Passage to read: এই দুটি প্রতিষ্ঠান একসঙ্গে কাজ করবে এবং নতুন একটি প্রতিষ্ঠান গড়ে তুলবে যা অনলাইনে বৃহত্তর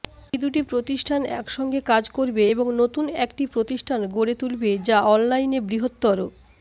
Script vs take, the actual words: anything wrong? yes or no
no